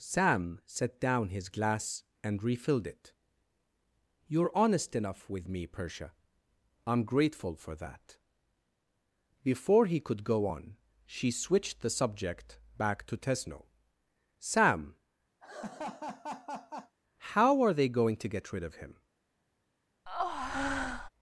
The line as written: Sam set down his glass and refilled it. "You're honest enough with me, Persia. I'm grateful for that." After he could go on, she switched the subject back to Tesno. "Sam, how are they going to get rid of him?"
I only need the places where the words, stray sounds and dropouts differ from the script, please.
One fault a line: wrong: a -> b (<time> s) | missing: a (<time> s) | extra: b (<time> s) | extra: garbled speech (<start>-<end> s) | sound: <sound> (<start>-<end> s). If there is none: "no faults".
wrong: After -> Before (9.4 s)
sound: laugh (15.4-16.9 s)
sound: breath (20.1-21.1 s)